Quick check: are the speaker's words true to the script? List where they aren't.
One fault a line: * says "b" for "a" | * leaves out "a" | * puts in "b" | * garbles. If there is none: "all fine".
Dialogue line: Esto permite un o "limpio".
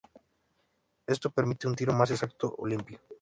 * puts in "tiro más exacto"